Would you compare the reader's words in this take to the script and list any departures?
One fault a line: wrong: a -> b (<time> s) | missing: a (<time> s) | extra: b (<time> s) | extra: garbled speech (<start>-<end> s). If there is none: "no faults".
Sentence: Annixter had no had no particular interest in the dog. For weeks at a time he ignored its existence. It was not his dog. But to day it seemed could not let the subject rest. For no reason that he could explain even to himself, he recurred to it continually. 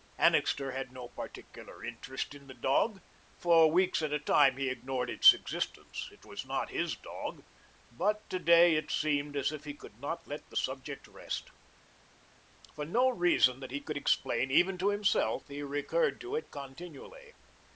missing: had no (1.1 s)
extra: as if he (9.4 s)